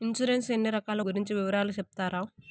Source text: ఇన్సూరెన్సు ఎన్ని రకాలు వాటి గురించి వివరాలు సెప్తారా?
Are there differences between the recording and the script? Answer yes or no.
yes